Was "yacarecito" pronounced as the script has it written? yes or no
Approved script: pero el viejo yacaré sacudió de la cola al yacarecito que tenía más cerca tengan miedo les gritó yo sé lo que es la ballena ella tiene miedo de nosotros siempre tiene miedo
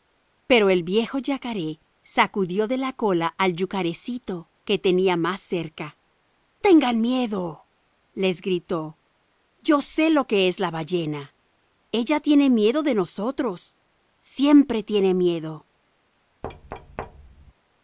yes